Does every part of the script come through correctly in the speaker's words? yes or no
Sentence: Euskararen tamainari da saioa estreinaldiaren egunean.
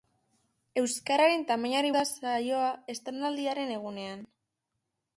yes